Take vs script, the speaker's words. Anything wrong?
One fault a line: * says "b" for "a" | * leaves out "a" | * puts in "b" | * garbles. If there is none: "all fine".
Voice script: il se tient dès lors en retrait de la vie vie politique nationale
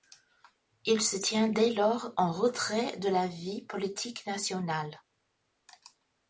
* leaves out "vie"